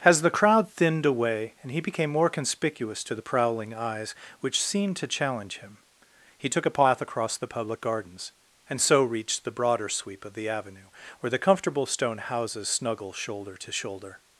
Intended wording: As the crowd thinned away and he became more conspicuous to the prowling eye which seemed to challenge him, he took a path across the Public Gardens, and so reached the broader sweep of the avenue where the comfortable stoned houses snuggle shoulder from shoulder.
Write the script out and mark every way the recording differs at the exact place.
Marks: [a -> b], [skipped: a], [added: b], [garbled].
As the crowd thinned away and he became more conspicuous to the prowling [eye -> eyes] which seemed to challenge him, he took a path across the Public Gardens, and so reached the broader sweep of the avenue where the comfortable [stoned -> stone] houses snuggle shoulder [from -> to] shoulder.